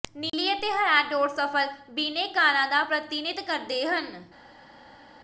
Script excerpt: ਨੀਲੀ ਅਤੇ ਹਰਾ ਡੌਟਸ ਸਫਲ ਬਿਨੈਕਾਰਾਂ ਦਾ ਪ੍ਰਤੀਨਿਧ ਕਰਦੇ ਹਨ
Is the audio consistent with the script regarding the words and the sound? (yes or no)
yes